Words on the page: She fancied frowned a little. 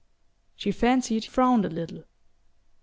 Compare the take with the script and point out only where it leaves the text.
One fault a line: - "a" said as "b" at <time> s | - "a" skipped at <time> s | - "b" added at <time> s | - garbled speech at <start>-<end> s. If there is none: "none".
none